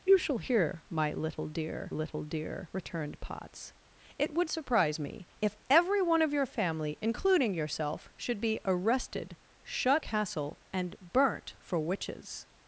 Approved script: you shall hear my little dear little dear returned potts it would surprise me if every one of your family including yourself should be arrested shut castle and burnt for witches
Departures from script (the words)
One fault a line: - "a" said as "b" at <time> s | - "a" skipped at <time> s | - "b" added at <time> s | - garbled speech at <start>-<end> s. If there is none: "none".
none